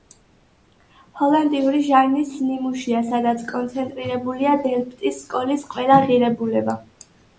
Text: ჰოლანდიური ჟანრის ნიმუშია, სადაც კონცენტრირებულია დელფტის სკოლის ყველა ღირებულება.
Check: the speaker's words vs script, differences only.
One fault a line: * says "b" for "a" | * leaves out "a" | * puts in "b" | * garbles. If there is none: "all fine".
all fine